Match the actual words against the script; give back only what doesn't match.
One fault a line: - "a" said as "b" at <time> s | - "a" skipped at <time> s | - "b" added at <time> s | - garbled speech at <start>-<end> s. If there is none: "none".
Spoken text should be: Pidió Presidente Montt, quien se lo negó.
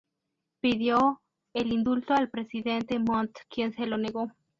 - "el indulto al" added at 1.5 s